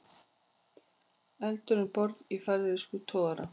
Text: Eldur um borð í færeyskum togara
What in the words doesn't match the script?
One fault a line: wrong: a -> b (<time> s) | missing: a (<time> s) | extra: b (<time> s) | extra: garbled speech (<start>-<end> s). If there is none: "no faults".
no faults